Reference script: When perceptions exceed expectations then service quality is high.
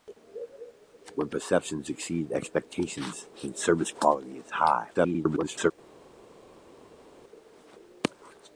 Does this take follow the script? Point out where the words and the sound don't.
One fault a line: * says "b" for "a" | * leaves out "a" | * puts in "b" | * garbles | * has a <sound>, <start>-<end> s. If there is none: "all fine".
* garbles